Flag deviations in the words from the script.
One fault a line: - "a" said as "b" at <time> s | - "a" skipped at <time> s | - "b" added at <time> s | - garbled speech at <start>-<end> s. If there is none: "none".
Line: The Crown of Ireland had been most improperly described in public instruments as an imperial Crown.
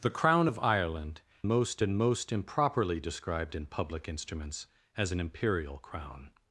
- "had" said as "most" at 1.5 s